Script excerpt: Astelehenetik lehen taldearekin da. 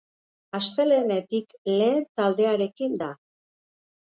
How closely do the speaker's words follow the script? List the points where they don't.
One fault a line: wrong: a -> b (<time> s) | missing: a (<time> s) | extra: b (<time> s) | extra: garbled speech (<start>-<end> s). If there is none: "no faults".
no faults